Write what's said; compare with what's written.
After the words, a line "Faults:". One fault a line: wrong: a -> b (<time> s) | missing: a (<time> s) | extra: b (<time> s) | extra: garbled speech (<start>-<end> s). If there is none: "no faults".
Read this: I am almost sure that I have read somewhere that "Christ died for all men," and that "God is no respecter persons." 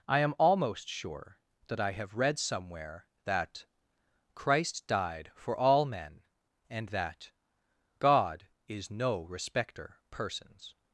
I am almost sure that I have read somewhere that "Christ died for all men," and that "God is no respecter persons."
Faults:
no faults